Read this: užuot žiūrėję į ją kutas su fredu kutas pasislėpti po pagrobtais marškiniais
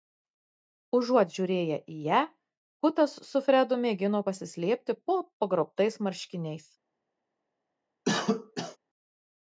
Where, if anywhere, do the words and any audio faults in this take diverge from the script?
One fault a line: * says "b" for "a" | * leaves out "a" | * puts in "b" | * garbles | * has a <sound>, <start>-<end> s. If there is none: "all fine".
* says "mėgino" for "kutas"
* has a cough, 8.0-8.8 s